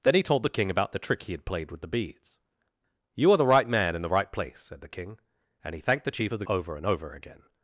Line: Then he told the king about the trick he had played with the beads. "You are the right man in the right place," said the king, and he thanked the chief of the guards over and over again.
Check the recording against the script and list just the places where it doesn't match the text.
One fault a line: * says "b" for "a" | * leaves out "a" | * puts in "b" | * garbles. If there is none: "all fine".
* leaves out "guards"